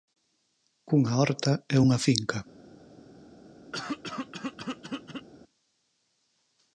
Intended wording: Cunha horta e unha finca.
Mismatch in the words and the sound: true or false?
true